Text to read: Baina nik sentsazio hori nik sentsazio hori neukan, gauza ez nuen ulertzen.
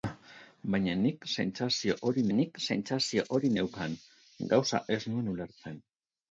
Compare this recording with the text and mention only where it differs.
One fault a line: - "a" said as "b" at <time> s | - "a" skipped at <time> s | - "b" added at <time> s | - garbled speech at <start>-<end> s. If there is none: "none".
none